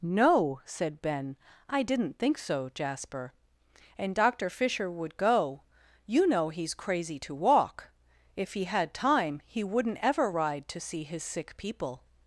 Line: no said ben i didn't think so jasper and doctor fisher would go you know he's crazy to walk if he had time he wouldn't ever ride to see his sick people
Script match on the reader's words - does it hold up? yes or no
yes